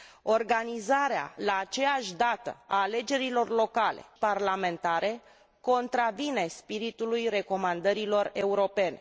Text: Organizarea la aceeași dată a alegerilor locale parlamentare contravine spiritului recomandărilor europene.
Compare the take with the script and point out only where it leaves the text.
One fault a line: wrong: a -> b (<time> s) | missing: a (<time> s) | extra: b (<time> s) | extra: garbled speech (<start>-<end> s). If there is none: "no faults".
no faults